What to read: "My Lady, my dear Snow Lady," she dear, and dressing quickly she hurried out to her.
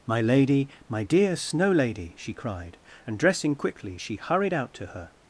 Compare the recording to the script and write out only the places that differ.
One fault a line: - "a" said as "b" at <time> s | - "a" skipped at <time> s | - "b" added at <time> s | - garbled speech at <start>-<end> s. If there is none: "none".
- "dear" said as "cried" at 2.3 s